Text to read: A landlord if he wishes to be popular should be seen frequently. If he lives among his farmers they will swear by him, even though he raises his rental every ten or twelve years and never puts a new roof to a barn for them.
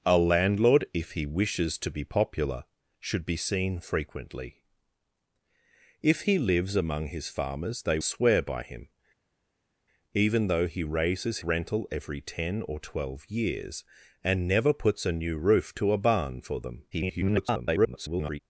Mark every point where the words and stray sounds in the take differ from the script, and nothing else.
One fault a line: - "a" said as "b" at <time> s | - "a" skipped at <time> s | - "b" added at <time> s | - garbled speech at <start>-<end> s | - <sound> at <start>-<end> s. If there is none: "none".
- "will" skipped at 8.0 s
- "his" skipped at 11.4 s
- garbled speech at 16.9-18.4 s